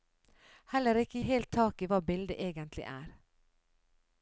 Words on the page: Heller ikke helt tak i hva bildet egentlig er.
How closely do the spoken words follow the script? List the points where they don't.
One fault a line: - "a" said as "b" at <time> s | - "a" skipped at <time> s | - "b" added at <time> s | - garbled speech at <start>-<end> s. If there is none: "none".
none